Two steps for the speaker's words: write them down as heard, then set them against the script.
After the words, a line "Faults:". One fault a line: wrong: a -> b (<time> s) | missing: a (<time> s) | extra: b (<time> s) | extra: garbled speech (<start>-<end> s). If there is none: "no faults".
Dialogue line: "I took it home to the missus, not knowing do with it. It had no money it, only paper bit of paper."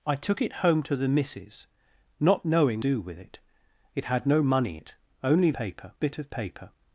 "I took it home to the missus, not knowing do with it. It had no money it, only paper bit of paper."
Faults:
no faults